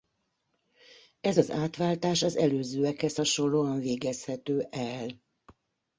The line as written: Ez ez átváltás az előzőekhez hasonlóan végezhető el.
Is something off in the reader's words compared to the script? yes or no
yes